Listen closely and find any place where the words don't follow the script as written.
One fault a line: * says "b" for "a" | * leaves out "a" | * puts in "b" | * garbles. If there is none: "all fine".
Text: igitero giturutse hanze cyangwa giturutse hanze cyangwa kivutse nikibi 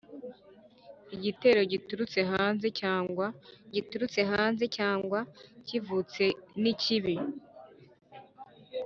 all fine